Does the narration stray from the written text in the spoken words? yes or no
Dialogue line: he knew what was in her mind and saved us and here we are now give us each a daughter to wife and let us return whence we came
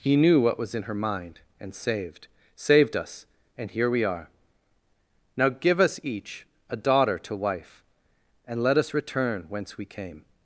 yes